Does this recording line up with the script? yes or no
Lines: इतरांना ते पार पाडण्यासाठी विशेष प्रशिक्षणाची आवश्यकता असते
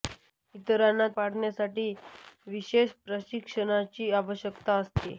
no